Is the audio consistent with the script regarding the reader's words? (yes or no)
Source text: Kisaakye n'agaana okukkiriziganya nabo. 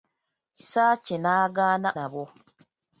no